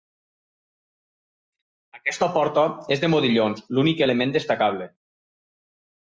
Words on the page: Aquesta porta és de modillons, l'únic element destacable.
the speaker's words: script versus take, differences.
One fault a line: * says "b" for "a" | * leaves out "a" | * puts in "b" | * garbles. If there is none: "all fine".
all fine